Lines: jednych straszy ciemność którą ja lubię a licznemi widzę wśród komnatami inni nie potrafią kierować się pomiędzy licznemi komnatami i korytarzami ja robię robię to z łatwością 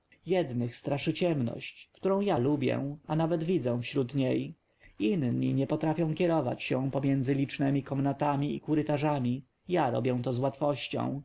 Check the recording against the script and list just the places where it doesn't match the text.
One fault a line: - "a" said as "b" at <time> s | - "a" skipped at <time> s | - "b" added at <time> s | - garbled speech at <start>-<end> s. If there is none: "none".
- "licznemi" said as "nawet" at 3.1 s
- "komnatami" said as "niej" at 4.2 s
- "robię" skipped at 10.2 s